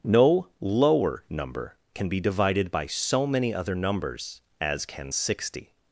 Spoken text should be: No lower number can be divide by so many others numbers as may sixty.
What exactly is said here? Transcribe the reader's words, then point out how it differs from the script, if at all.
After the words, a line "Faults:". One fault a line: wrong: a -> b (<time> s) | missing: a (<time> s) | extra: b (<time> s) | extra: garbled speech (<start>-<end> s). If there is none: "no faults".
No lower number can be divided by so many other numbers as can sixty.
Faults:
wrong: divide -> divided (2.2 s)
wrong: others -> other (3.5 s)
wrong: may -> can (4.8 s)